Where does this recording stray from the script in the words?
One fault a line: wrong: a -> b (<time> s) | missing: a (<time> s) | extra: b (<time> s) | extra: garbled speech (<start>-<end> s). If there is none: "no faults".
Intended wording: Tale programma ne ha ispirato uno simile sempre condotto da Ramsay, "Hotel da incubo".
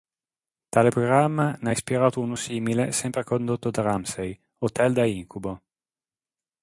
no faults